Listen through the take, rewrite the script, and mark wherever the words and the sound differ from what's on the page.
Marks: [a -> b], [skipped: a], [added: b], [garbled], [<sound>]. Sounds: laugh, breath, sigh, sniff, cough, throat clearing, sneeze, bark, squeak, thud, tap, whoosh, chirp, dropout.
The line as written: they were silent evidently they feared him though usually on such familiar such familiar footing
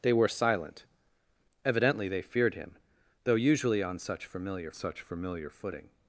they were silent evidently they feared him though usually on such familiar such familiar footing